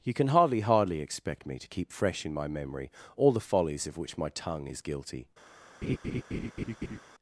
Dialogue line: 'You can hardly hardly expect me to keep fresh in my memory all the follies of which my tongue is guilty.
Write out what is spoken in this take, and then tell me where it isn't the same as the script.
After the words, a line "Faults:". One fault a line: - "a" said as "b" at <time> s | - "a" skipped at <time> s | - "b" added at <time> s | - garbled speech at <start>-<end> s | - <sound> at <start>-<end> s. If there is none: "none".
'You can hardly hardly expect me to keep fresh in my memory all the follies of which my tongue is guilty.
Faults:
- laugh at 5.8-7.0 s